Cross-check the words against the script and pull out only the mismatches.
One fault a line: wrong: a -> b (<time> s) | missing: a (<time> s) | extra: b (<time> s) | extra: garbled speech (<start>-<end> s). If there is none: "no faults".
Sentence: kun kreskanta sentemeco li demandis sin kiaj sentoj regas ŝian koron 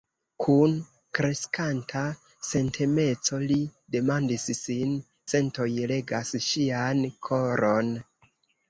missing: kiaj (5.0 s)